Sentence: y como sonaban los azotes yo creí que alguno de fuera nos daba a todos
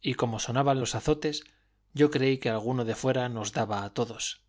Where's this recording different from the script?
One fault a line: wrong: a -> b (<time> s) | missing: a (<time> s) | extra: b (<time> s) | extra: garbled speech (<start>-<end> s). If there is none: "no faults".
no faults